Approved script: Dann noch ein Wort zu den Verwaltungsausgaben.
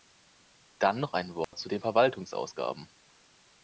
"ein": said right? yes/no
yes